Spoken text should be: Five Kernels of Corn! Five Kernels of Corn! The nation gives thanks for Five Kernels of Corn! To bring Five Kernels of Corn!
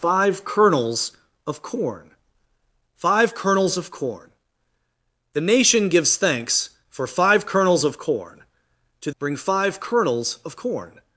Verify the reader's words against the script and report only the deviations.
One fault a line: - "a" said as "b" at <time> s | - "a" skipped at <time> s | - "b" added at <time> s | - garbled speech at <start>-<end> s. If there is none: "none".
none